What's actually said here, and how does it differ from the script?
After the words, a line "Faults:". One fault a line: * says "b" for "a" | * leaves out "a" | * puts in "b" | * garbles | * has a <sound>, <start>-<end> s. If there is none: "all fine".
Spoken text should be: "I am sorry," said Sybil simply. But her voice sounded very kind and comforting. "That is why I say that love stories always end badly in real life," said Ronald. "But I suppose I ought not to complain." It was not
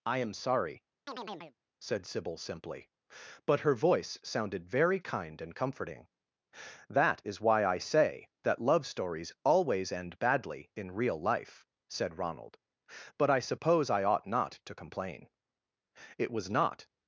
"I am sorry," said Sybil simply. But her voice sounded very kind and comforting. "That is why I say that love stories always end badly in real life," said Ronald. "But I suppose I ought not to complain." It was not
Faults:
* has a chirp, 1.1-1.6 s